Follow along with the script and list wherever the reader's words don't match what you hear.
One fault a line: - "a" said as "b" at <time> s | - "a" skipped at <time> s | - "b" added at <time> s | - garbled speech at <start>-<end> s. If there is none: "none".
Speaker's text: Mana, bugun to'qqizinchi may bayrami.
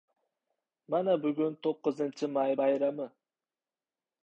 none